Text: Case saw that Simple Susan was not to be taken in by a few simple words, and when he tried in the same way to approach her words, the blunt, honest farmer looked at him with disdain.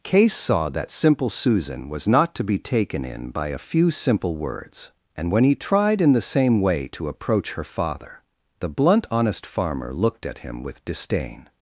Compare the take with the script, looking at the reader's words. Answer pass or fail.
fail